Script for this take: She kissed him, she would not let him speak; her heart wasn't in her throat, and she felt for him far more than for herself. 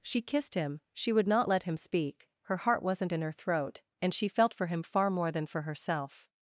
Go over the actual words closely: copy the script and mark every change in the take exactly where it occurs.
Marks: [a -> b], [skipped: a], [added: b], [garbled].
She kissed him, she would not let him speak; her heart wasn't in her throat, and she felt for him far more than for herself.